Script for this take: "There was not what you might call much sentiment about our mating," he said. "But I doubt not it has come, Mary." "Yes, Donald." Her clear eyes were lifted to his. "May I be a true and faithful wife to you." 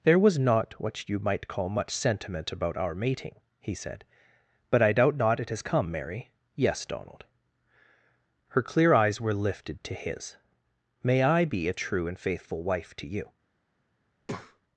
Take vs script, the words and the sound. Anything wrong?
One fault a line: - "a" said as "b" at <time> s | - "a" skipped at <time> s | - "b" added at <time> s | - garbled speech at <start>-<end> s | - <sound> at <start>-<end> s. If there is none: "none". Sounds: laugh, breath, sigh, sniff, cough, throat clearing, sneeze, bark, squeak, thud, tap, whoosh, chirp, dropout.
- breath at 14.2-14.6 s